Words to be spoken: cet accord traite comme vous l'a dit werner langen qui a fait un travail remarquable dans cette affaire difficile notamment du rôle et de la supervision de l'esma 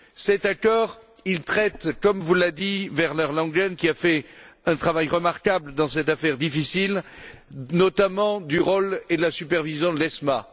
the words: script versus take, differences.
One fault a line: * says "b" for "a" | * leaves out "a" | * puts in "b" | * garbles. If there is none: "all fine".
all fine